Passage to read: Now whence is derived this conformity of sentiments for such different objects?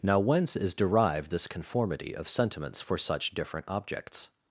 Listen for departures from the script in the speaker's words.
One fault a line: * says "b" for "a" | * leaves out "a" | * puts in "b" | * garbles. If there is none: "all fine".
all fine